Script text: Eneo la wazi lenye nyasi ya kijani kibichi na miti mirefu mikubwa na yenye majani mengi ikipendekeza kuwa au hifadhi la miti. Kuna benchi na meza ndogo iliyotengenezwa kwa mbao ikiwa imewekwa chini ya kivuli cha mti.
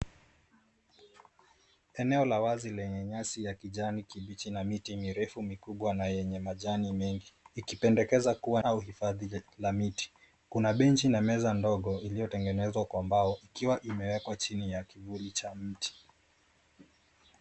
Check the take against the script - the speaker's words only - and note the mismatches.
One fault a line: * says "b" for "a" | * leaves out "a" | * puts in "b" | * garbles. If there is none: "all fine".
all fine